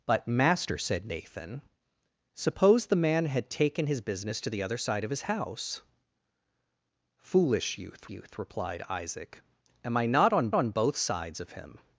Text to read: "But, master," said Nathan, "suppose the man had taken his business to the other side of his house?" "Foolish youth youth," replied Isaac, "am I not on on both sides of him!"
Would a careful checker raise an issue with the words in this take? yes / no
no